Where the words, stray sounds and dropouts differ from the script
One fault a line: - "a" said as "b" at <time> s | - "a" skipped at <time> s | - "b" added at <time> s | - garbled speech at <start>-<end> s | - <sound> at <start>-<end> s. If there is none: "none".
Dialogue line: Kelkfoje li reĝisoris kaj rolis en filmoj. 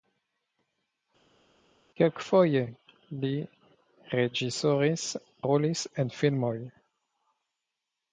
- "kaj" skipped at 5.1 s